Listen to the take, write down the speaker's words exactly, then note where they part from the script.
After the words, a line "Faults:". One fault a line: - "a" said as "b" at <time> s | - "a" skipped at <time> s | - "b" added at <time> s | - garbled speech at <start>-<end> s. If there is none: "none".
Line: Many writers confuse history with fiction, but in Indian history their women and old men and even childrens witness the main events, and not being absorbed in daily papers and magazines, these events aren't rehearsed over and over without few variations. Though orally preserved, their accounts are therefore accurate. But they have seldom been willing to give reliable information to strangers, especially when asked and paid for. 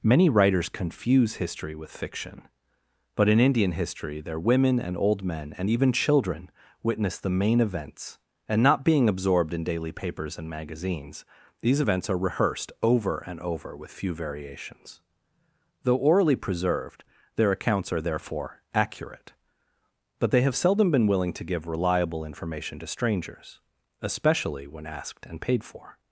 Many writers confuse history with fiction, but in Indian history their women and old men and even children witness the main events, and not being absorbed in daily papers and magazines, these events are rehearsed over and over with few variations. Though orally preserved, their accounts are therefore accurate. But they have seldom been willing to give reliable information to strangers, especially when asked and paid for.
Faults:
- "childrens" said as "children" at 5.9 s
- "aren't" said as "are" at 12.1 s
- "without" said as "with" at 13.8 s